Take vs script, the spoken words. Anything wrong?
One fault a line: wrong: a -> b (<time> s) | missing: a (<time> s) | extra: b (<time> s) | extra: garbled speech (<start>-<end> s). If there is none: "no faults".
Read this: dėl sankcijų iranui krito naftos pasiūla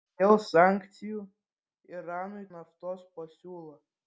missing: krito (2.4 s)